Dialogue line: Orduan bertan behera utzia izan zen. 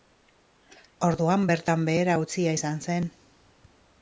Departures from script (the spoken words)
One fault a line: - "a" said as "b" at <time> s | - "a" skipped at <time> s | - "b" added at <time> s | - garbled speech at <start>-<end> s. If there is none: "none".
none